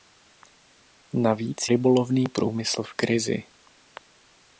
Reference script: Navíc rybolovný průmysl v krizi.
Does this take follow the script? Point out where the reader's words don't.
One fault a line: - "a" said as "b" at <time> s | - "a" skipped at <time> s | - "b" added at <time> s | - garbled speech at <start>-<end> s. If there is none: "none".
none